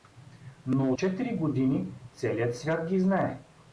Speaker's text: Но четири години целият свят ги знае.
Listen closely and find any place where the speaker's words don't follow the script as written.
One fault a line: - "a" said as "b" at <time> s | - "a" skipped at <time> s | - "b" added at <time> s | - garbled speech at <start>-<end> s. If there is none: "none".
none